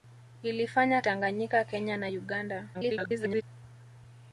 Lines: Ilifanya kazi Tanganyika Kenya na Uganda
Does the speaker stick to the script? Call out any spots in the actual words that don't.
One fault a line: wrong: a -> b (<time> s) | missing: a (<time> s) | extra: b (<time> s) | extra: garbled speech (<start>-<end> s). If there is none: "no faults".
missing: kazi (1.0 s)
extra: garbled speech (2.7-3.4 s)